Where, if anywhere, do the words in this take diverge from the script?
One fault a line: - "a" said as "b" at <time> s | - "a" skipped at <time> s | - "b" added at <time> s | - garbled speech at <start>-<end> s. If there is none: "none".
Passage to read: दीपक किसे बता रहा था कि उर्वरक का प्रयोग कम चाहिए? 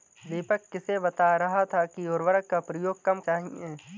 none